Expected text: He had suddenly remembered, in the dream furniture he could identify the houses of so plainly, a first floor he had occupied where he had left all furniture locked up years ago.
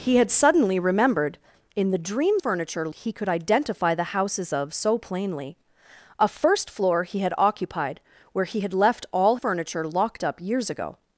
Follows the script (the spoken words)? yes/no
yes